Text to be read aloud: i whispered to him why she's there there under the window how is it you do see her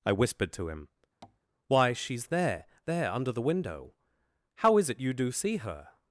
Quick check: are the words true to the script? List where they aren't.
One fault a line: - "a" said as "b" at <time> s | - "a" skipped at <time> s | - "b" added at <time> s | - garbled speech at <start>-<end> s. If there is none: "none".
none